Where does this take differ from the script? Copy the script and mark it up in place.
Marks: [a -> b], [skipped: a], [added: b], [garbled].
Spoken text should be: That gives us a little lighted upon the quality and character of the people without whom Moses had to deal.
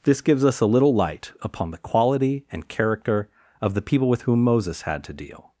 [That -> This] gives us a little [lighted -> light] upon the quality and character of the people [without -> with] whom Moses had to deal.